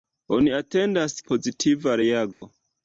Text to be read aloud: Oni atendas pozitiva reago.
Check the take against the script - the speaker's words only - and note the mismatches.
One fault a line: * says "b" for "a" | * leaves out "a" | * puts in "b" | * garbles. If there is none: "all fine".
all fine